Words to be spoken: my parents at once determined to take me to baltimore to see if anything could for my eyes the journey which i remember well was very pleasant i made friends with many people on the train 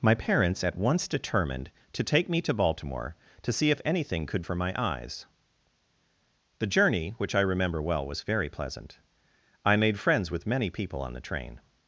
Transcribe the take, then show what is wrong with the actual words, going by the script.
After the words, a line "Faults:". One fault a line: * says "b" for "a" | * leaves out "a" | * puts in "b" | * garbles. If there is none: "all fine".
my parents at once determined to take me to baltimore to see if anything could for my eyes the journey which i remember well was very pleasant i made friends with many people on the train
Faults:
all fine